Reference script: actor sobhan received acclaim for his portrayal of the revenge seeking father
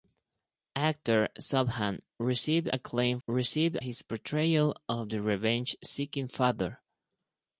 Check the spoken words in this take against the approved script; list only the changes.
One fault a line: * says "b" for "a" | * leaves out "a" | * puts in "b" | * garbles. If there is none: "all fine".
* says "received" for "for"